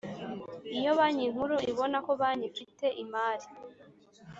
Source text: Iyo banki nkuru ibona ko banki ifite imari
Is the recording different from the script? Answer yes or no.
no